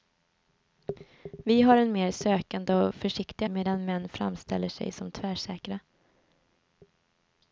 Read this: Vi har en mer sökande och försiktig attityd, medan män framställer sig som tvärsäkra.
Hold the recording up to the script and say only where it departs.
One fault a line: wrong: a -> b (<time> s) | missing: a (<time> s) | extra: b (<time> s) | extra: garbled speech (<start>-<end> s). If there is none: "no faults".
missing: attityd (3.5 s)